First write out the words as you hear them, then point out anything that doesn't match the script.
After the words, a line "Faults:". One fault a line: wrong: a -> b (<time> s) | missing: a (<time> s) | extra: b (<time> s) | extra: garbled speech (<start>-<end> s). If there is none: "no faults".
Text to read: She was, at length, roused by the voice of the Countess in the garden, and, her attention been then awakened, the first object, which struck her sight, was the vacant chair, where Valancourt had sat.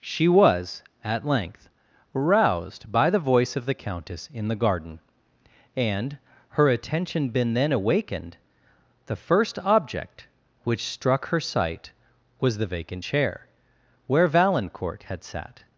She was, at length, roused by the voice of the Countess in the garden, and, her attention been then awakened, the first object, which struck her sight, was the vacant chair, where Valancourt had sat.
Faults:
no faults